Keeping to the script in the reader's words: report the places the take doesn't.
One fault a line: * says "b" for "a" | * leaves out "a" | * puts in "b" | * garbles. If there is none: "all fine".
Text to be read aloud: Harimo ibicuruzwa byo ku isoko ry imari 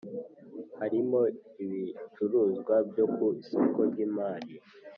all fine